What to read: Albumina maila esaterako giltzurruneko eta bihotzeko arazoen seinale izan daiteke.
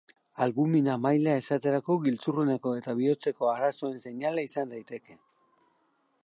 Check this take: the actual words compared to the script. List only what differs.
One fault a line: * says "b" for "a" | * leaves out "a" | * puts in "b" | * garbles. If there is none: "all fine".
all fine